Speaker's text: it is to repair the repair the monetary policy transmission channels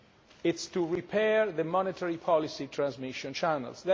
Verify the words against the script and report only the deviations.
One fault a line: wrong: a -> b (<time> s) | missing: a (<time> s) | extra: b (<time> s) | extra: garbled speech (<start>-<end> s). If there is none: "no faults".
missing: repair the (1.6 s)